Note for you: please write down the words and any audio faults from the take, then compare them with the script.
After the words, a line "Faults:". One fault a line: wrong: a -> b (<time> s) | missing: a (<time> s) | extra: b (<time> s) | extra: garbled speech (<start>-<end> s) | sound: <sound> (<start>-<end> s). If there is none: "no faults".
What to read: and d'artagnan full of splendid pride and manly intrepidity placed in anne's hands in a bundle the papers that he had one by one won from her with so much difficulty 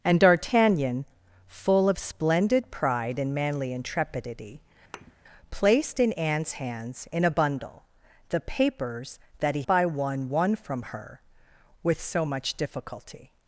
and d'artagnan full of splendid pride and manly intrepidity placed in anne's hands in a bundle the papers that he by one won from her with so much difficulty
Faults:
sound: thud (4.9-5.1 s)
missing: had one (9.6 s)